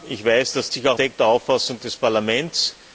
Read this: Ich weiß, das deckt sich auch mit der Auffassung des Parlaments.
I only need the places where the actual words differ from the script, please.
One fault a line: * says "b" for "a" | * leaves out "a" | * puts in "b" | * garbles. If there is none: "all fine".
* leaves out "deckt"
* says "deckt" for "mit"